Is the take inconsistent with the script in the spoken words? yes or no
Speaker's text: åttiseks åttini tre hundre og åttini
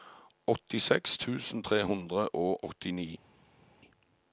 yes